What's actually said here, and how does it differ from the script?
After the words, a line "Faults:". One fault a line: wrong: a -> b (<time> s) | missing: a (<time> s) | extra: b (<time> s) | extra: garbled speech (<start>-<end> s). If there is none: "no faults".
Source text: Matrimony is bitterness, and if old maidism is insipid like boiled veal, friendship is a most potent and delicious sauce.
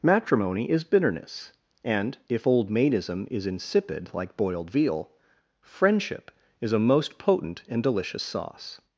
Matrimony is bitterness, and if old maidism is insipid like boiled veal, friendship is a most potent and delicious sauce.
Faults:
no faults